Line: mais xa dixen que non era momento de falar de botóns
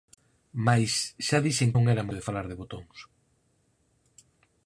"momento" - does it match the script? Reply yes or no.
no